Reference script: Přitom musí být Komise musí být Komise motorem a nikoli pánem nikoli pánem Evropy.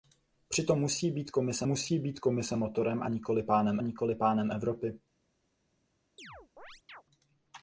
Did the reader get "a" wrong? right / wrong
right